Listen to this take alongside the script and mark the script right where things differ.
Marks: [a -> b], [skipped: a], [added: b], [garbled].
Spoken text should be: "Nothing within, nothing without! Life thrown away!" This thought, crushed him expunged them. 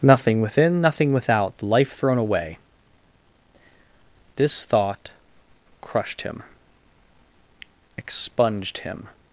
"Nothing within, nothing without! Life thrown away!" This thought, crushed him expunged [them. -> him]